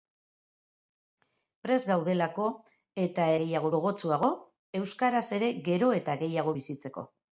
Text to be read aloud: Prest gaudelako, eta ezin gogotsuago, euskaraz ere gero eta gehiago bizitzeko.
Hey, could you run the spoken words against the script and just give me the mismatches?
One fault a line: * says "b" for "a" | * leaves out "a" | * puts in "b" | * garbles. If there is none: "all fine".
* says "gehiago" for "ezin"